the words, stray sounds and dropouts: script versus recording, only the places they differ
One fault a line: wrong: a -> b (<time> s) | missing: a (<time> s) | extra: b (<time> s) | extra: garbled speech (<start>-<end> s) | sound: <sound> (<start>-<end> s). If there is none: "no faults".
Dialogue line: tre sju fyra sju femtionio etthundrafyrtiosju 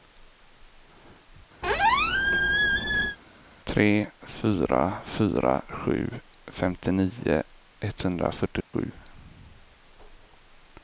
sound: squeak (1.6-3.2 s)
wrong: sju -> fyra (4.3 s)
sound: dropout (8.6-8.7 s)